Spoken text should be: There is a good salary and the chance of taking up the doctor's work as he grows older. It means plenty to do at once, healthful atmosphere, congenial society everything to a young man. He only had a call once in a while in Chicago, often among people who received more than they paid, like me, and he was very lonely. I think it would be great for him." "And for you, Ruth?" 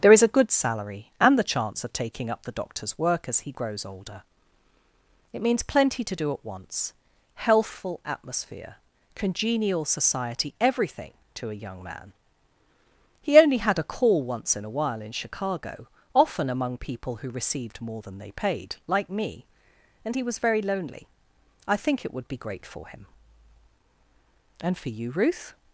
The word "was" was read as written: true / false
true